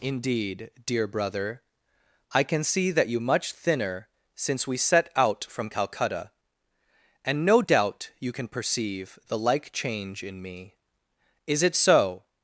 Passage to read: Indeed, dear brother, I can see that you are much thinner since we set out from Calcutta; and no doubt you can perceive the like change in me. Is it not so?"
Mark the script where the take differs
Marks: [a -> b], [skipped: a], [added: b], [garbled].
Indeed, dear brother, I can see that you [skipped: are] much thinner since we set out from Calcutta; and no doubt you can perceive the like change in me. Is it [skipped: not] so?"